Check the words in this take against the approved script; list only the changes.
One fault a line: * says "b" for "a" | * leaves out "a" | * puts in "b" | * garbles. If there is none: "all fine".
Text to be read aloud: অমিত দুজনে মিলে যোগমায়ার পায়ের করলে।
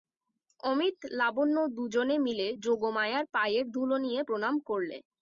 * puts in "লাবণ্য"
* puts in "ধুলো নিয়ে প্রণাম"